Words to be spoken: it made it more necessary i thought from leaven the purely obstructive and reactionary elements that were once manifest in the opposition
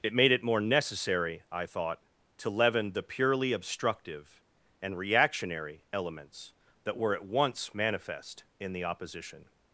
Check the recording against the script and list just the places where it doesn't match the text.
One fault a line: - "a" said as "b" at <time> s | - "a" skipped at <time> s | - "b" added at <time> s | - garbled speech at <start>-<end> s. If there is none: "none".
- "from" said as "to" at 2.4 s
- "at" added at 7.1 s